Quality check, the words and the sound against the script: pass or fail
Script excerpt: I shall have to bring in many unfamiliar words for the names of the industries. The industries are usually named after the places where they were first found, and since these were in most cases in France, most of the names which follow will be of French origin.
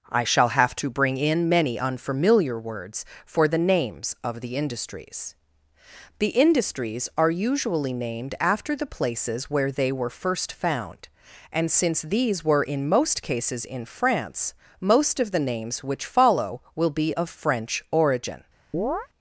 fail